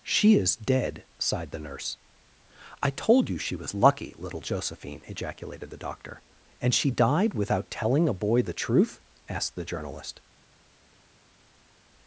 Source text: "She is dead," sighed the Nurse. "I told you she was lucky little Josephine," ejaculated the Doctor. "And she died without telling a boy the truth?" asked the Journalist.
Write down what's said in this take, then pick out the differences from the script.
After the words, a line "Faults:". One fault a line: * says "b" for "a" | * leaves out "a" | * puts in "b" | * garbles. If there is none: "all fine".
"She is dead," sighed the Nurse. "I told you she was lucky little Josephine," ejaculated the Doctor. "And she died without telling a boy the truth?" asked the Journalist.
Faults:
all fine